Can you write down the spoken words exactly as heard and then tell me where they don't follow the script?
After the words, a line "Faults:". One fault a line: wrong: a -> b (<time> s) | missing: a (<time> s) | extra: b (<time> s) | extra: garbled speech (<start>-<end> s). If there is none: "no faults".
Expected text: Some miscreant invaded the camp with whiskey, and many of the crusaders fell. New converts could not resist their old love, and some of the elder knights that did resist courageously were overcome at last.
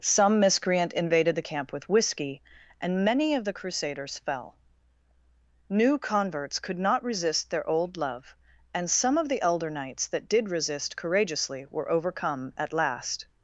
Some miscreant invaded the camp with whiskey, and many of the crusaders fell. New converts could not resist their old love, and some of the elder knights that did resist courageously were overcome at last.
Faults:
no faults